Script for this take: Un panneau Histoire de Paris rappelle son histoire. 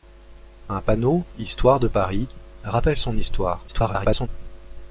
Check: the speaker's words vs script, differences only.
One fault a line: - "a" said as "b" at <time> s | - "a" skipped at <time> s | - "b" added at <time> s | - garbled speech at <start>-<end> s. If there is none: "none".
- garbled speech at 3.7-4.3 s